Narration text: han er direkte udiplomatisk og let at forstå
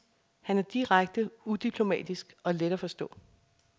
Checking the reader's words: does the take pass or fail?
pass